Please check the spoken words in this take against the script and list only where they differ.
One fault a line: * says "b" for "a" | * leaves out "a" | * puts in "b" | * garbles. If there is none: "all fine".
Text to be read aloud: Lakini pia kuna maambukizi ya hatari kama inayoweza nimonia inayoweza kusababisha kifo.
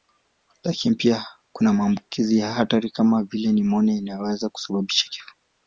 * says "vile" for "inayoweza"